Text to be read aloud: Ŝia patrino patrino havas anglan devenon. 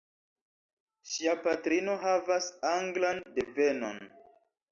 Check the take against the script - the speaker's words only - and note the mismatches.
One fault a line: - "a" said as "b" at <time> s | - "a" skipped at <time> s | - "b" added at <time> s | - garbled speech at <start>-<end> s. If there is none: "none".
- "patrino" skipped at 2.0 s